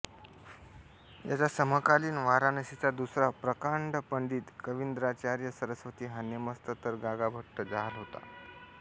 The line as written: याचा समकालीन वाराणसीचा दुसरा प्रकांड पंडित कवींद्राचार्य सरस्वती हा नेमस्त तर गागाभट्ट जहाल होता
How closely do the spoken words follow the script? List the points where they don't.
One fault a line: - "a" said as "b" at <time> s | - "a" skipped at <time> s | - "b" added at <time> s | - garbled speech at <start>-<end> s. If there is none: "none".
none